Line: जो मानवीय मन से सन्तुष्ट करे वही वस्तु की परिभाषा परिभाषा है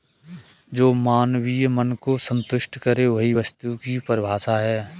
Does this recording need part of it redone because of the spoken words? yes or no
yes